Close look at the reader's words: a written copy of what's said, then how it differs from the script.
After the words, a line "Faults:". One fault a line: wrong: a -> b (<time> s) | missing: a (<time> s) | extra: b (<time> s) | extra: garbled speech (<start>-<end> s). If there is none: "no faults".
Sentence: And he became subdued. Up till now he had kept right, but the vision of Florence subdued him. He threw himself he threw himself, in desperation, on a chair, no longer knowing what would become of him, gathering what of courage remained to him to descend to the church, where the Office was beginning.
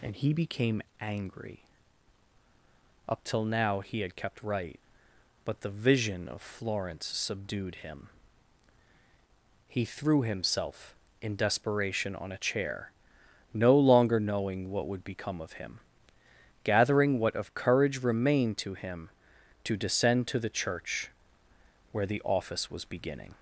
And he became angry. Up till now he had kept right, but the vision of Florence subdued him. He threw himself, in desperation, on a chair, no longer knowing what would become of him, gathering what of courage remained to him to descend to the church, where the Office was beginning.
Faults:
wrong: subdued -> angry (1.0 s)
missing: he threw himself (10.9 s)